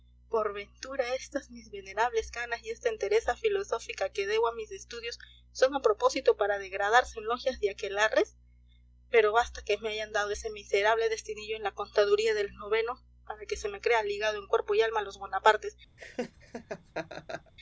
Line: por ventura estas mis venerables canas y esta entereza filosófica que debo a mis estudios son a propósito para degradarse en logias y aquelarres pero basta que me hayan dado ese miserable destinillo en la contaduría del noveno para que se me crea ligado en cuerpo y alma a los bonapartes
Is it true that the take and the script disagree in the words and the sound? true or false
true